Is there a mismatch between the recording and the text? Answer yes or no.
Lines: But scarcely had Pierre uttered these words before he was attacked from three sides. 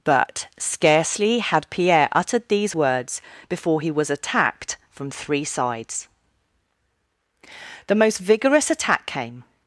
yes